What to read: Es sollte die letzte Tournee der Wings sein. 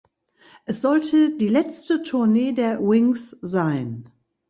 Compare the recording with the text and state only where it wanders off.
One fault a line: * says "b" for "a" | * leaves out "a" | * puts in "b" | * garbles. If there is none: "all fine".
all fine